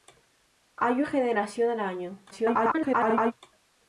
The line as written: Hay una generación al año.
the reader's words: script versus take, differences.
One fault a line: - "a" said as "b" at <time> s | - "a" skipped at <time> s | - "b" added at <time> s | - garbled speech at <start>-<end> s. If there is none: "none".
- "una" skipped at 1.0 s
- garbled speech at 2.3-3.3 s